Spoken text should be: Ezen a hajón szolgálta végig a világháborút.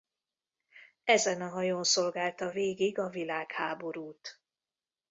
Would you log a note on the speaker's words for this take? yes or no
no